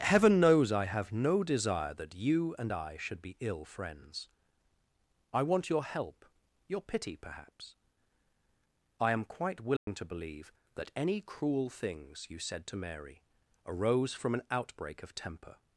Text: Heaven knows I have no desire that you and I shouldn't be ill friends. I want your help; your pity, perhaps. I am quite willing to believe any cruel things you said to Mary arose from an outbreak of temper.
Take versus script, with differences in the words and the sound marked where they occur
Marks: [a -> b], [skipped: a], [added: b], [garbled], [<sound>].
Heaven knows I have no desire that you and I [shouldn't -> should] be ill friends. I want your help; your pity, perhaps. I am quite willing [dropout] to believe [added: that] any cruel things you said to Mary arose from an outbreak of temper.